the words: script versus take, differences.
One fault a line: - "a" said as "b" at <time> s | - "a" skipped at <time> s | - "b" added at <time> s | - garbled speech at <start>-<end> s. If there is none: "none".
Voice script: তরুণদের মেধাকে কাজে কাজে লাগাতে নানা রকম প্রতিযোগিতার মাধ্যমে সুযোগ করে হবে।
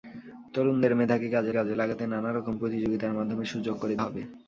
none